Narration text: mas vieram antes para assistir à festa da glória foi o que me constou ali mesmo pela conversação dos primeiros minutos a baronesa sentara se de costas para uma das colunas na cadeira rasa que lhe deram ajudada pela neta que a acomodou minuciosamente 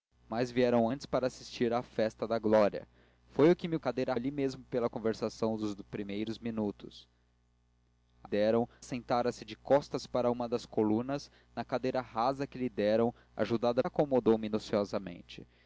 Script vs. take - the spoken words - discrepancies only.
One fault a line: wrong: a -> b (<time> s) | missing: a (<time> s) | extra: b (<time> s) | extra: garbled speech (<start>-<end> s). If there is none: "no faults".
wrong: constou -> cadeira (3.8 s)
wrong: baronesa -> deram (8.2 s)
missing: pela neta que (13.8 s)